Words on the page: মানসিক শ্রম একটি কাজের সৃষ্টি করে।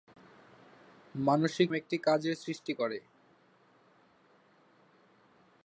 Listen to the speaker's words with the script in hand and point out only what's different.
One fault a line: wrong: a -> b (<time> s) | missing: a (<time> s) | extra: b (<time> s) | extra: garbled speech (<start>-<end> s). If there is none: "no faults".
missing: শ্রম (1.7 s)